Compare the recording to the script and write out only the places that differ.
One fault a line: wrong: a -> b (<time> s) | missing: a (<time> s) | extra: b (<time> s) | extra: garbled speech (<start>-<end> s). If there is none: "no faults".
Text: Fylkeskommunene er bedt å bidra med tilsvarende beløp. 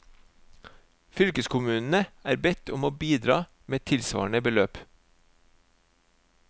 extra: om (2.7 s)